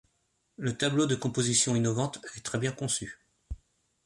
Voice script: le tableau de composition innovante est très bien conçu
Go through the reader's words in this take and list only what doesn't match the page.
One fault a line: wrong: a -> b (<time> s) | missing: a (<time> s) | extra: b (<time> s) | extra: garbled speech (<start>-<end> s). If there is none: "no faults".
no faults